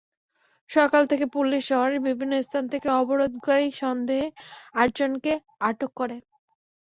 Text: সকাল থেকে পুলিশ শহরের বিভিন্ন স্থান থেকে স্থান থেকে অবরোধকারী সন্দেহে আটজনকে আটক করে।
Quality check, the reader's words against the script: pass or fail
fail